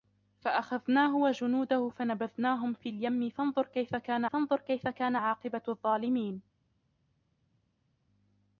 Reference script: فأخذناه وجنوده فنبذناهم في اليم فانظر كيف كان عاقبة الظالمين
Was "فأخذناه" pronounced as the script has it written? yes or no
yes